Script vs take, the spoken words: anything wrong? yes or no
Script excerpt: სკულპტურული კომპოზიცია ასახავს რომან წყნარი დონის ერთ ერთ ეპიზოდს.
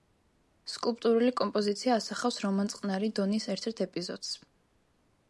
no